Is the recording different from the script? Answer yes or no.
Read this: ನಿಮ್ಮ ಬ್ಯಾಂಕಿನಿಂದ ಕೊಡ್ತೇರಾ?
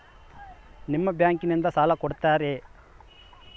yes